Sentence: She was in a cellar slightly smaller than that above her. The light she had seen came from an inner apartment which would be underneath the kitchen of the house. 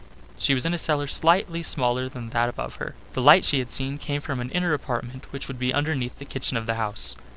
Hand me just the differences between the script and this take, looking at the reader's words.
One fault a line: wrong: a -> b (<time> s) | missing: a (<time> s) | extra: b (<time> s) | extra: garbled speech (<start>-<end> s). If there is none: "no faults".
no faults